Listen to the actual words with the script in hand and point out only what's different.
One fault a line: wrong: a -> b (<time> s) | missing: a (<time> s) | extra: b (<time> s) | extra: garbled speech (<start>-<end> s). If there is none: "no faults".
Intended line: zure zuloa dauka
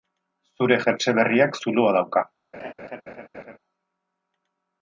extra: jertse berriak (0.8 s)